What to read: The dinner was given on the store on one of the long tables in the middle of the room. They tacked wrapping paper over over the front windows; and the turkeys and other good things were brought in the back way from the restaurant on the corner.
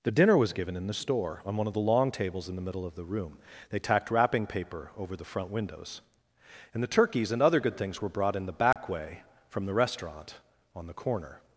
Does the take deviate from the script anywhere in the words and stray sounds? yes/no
yes